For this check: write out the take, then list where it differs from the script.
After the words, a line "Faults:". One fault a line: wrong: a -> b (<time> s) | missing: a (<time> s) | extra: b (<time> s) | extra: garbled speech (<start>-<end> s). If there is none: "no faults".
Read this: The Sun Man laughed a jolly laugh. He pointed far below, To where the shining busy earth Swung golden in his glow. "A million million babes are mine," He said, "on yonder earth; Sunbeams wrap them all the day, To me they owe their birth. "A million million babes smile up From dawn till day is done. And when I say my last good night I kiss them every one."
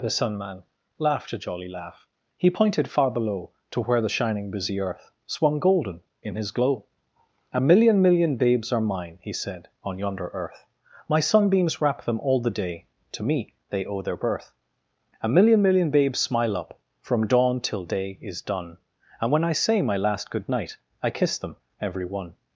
The Sun Man laughed a jolly laugh. He pointed far below, To where the shining busy earth Swung golden in his glow. "A million million babes are mine," He said, "on yonder earth; My sunbeams wrap them all the day, To me they owe their birth. "A million million babes smile up From dawn till day is done. And when I say my last good night I kiss them every one."
Faults:
extra: My (11.1 s)